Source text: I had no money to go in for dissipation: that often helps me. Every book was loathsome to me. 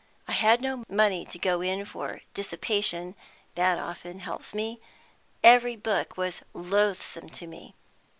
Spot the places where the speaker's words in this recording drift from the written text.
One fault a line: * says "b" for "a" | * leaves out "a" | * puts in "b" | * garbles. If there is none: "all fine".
all fine